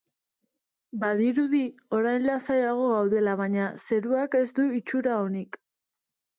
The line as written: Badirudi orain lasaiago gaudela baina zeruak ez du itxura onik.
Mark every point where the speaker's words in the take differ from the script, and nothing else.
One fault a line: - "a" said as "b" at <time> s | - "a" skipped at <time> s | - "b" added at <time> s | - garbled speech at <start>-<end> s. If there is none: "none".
none